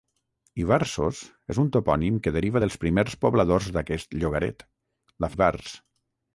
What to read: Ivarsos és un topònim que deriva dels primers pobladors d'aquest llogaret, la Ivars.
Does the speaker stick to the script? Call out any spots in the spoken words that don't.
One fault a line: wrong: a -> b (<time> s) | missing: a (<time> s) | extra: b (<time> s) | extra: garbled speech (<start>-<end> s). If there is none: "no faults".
no faults